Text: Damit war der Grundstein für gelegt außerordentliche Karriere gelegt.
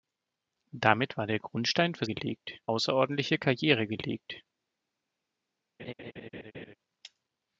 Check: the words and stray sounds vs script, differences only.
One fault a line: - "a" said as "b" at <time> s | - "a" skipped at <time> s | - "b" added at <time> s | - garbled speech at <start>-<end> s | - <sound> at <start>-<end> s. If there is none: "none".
- laugh at 5.8-6.7 s